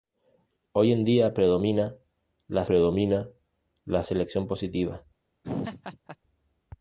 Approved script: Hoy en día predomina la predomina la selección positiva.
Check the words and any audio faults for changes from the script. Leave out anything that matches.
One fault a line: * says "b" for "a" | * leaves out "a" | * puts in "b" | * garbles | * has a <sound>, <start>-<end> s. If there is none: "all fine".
* has a laugh, 5.4-6.2 s